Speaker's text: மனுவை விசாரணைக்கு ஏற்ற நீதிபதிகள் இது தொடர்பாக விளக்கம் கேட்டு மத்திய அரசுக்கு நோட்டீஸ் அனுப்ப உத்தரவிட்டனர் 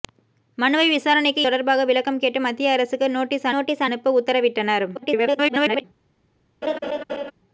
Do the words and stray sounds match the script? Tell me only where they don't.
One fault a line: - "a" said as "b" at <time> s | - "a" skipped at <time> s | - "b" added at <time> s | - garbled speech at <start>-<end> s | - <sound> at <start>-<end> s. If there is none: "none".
- "ஏற்ற நீதிபதிகள் இது" skipped at 1.4 s
- "நோட்டீஸ்" added at 3.5 s
- garbled speech at 4.9-5.8 s
- laugh at 6.6-7.3 s